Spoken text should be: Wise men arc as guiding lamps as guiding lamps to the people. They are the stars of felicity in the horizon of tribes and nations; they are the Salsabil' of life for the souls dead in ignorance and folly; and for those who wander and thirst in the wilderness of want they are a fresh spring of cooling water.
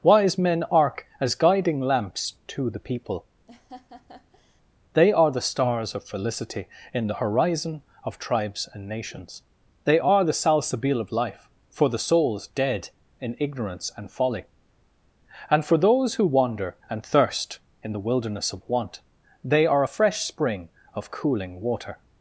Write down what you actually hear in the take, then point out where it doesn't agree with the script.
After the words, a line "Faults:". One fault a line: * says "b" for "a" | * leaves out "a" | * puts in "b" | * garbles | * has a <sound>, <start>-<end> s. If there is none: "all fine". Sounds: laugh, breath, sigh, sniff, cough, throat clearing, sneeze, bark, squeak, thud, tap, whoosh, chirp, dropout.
Wise men arc as guiding lamps to the people. They are the stars of felicity in the horizon of tribes and nations; they are the Salsabil' of life for the souls dead in ignorance and folly; and for those who wander and thirst in the wilderness of want they are a fresh spring of cooling water.
Faults:
* leaves out "as guiding lamps"
* has a laugh, 3.5-4.6 s